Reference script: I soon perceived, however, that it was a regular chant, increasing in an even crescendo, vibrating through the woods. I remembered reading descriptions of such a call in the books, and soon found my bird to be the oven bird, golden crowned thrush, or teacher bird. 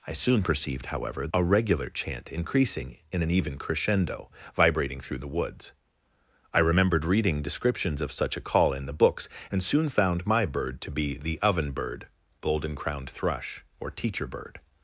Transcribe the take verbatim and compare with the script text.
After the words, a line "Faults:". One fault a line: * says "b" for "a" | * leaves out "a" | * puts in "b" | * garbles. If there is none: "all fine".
I soon perceived, however, a regular chant, increasing in an even crescendo, vibrating through the woods. I remembered reading descriptions of such a call in the books, and soon found my bird to be the oven bird, golden crowned thrush, or teacher bird.
Faults:
* leaves out "that it was"